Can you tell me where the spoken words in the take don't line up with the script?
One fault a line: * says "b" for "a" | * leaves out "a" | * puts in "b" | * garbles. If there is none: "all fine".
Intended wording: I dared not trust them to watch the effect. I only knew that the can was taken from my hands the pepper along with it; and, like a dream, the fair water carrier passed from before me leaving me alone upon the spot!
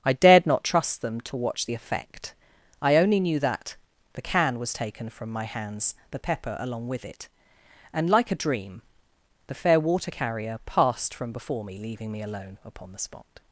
all fine